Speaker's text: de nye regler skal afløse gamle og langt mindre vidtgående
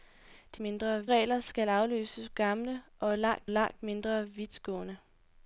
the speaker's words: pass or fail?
fail